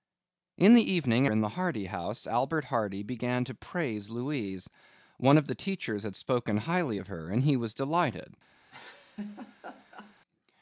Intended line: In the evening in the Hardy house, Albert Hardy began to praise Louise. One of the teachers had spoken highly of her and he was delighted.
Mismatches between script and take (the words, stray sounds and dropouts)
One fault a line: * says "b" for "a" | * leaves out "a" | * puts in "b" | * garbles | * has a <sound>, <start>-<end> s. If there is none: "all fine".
* has a laugh, 8.7-10.2 s